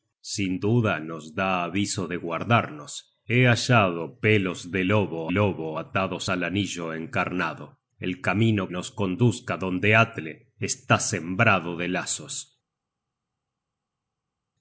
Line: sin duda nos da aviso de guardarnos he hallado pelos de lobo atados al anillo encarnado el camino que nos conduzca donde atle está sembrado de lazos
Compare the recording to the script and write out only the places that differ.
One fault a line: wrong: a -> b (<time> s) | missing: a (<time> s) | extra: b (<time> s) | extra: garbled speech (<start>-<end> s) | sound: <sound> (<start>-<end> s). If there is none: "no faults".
extra: lobo (5.3 s)
missing: que (8.7 s)